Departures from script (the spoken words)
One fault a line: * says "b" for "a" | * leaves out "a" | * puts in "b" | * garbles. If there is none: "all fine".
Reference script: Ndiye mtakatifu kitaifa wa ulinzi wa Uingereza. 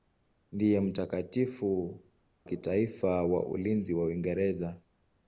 all fine